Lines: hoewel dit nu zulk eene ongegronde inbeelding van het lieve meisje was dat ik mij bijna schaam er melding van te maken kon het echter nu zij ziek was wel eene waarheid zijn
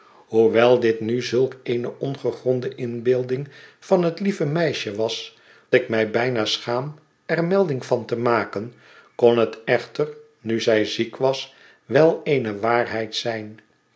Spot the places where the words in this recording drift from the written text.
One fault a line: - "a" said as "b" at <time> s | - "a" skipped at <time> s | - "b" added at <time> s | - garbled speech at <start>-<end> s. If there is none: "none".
- "dat" skipped at 5.4 s